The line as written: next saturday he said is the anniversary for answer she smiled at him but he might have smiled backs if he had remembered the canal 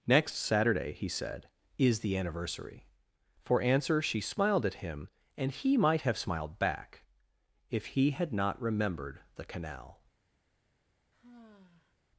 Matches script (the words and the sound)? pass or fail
fail